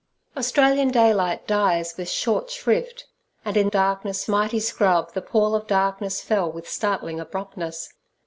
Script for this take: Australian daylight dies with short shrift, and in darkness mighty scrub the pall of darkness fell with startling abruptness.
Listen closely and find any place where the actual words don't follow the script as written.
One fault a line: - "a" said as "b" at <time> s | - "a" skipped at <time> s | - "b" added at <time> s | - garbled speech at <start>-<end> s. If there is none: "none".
none